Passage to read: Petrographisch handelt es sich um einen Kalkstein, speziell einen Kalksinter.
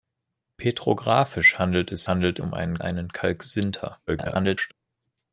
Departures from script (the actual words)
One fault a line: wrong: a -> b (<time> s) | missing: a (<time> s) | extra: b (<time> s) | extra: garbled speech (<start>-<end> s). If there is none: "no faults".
wrong: sich -> handelt (2.1 s)
missing: Kalkstein speziell (2.8 s)
extra: garbled speech (4.1-4.7 s)